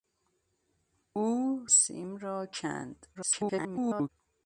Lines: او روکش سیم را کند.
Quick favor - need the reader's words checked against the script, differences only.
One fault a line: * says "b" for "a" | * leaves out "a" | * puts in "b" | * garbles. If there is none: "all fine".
* leaves out "روکش"
* garbles